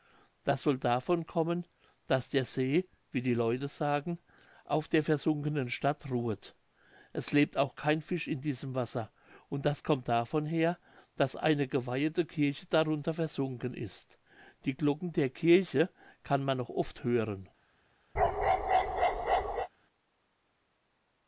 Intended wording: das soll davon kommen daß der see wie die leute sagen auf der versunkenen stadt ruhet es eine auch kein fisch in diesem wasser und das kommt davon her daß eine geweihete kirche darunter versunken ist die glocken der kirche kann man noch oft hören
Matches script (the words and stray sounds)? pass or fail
fail